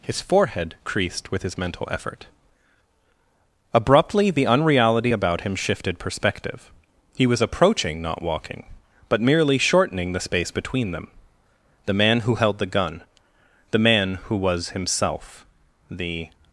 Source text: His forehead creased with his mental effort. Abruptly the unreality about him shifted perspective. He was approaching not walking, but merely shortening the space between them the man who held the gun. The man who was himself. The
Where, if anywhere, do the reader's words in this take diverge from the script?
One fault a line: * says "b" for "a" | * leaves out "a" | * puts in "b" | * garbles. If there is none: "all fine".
all fine